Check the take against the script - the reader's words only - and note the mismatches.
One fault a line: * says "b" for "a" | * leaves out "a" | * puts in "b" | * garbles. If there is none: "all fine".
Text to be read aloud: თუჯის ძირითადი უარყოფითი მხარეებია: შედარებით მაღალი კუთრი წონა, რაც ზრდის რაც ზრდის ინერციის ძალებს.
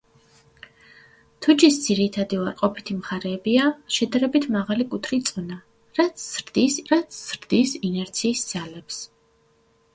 all fine